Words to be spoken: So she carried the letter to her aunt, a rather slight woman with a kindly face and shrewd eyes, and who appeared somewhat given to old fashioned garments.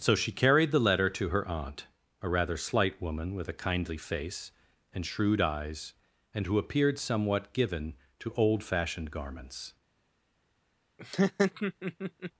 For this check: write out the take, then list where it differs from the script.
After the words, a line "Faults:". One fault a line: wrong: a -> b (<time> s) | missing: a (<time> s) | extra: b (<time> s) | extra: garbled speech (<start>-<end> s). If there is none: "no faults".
So she carried the letter to her aunt, a rather slight woman with a kindly face and shrewd eyes, and who appeared somewhat given to old fashioned garments.
Faults:
no faults